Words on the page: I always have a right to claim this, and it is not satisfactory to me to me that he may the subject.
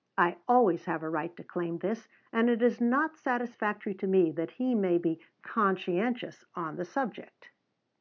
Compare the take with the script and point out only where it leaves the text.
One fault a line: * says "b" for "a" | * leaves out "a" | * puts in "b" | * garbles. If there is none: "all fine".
* leaves out "to me"
* puts in "be conscientious on"